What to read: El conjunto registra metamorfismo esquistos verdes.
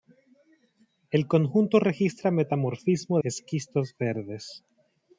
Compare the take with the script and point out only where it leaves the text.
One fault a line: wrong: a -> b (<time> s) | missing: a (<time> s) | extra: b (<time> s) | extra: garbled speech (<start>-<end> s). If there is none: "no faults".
no faults